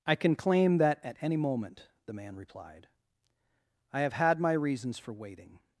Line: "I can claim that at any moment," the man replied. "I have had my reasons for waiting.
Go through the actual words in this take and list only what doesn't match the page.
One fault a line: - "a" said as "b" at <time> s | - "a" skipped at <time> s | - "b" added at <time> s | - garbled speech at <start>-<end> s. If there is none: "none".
none